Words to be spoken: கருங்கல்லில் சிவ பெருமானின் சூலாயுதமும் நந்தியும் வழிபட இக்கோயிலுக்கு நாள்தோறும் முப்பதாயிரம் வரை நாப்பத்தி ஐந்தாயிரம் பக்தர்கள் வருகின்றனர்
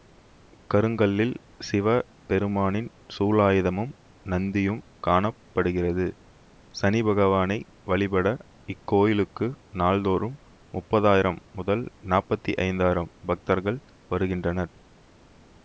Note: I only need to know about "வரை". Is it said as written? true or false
false